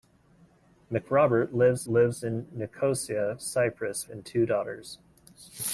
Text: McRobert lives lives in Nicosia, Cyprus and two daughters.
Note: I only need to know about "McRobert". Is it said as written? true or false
true